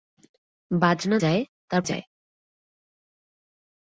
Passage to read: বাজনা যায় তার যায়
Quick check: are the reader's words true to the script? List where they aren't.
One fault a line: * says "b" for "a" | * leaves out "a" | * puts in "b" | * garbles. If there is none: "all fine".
all fine